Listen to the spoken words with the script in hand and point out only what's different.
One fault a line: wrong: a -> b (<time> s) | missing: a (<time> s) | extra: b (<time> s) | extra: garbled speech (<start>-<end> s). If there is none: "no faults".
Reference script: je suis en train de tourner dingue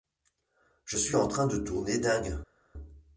no faults